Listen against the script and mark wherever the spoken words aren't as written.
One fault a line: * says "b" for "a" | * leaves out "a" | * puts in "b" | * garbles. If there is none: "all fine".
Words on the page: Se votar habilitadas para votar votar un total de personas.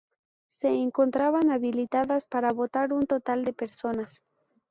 * says "encontraban" for "votar"
* leaves out "votar"